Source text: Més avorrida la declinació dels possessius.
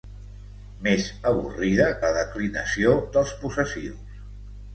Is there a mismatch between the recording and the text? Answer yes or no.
no